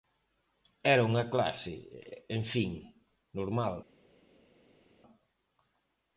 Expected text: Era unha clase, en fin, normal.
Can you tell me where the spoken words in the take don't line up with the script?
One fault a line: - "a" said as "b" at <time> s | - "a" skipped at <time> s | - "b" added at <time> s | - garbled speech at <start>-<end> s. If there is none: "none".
none